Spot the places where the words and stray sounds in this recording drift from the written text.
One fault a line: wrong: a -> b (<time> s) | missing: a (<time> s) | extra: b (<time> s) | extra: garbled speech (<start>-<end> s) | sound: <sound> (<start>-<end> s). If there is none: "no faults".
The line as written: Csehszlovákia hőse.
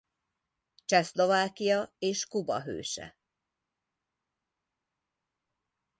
extra: és Kuba (2.0 s)